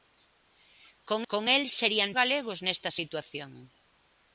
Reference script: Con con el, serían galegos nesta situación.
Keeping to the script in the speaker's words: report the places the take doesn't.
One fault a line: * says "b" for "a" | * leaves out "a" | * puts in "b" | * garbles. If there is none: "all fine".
all fine